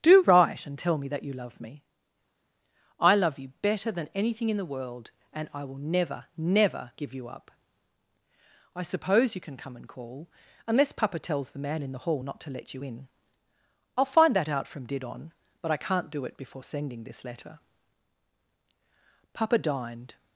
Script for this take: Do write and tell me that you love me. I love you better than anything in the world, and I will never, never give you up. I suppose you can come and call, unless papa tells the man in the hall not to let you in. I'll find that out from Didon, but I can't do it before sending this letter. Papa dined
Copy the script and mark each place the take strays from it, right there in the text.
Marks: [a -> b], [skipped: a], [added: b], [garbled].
Do write and tell me that you love me. I love you better than anything in the world, and I will never, never give you up. I suppose you can come and call, unless papa tells the man in the hall not to let you in. I'll find that out from Didon, but I can't do it before sending this letter. Papa dined